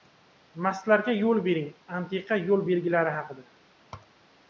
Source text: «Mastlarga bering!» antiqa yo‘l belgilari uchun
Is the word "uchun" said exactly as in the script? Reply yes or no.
no